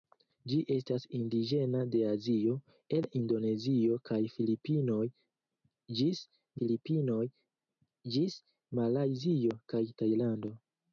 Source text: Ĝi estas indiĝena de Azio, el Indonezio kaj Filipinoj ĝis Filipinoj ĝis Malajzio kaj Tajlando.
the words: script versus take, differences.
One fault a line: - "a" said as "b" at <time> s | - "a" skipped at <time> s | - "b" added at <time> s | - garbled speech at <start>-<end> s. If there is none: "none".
none